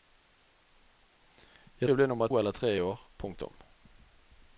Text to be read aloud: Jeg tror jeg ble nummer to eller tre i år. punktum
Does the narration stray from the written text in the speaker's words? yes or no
yes